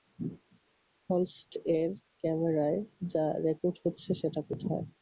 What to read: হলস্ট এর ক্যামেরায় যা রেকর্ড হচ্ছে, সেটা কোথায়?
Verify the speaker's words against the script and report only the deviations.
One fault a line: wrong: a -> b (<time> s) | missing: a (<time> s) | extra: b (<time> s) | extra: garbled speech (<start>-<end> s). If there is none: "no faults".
no faults